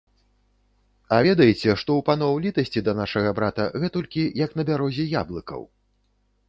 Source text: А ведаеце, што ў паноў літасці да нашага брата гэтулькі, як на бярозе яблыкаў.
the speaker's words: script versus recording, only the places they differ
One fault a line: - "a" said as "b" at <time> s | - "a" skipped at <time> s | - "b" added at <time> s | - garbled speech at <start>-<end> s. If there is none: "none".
none